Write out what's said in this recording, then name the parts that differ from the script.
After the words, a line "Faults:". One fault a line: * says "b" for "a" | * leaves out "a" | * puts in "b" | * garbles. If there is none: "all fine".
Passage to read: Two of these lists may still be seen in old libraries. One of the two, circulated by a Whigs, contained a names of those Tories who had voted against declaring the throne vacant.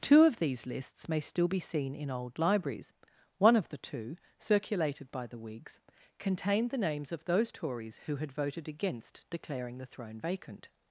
Two of these lists may still be seen in old libraries. One of the two, circulated by the Whigs, contained the names of those Tories who had voted against declaring the throne vacant.
Faults:
* says "the" for "a"
* says "the" for "a"